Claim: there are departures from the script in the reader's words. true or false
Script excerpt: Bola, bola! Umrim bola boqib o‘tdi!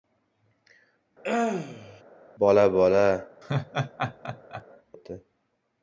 true